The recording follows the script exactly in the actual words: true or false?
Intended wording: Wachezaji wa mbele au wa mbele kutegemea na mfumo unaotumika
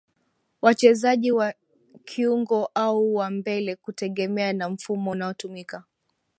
false